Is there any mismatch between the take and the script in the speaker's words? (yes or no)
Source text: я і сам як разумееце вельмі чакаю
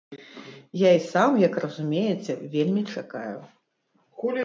no